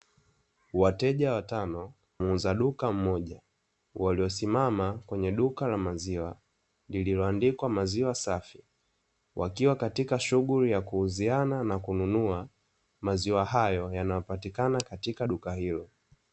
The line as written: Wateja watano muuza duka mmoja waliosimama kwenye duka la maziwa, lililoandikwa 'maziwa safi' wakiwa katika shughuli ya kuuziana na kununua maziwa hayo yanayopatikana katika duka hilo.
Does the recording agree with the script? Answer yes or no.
yes